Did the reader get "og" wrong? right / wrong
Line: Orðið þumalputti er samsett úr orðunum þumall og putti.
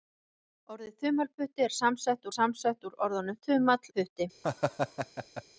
wrong